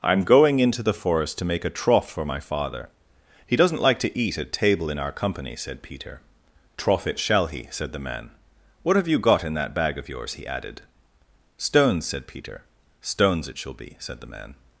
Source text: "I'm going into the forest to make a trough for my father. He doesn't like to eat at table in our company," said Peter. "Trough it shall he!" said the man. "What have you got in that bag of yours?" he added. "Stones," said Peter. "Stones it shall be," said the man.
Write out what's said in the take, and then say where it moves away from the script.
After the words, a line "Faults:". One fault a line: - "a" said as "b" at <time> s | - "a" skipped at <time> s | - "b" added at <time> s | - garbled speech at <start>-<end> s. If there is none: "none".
"I'm going into the forest to make a trough for my father. He doesn't like to eat at table in our company," said Peter. "Trough it shall he!" said the man. "What have you got in that bag of yours?" he added. "Stones," said Peter. "Stones it shall be," said the man.
Faults:
none